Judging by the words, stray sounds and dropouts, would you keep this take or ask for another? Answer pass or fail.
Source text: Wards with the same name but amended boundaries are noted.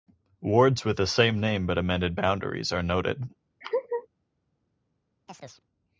fail